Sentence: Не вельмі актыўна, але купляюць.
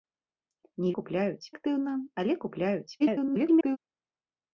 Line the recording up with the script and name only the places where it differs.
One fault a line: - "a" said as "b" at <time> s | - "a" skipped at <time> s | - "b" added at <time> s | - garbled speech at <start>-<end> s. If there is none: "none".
- "вельмі" said as "купляюць" at 1.0 s
- garbled speech at 3.0-3.8 s